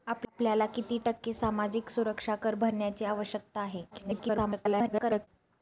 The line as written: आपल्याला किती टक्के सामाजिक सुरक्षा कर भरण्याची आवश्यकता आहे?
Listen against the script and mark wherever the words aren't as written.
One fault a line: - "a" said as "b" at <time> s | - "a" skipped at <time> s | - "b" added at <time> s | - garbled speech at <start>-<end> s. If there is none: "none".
- garbled speech at 3.9-5.3 s